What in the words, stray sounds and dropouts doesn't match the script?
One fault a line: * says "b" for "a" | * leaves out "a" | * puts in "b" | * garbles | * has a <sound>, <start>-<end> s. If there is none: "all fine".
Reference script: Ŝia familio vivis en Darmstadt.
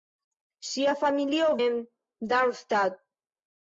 * leaves out "vivis"